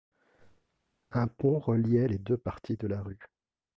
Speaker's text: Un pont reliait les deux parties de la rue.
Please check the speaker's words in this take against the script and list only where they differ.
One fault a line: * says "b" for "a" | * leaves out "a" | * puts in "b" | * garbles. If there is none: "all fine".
all fine